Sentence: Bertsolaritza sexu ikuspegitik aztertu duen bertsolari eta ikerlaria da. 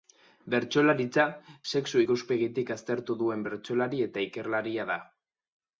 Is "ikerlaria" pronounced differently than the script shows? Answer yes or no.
no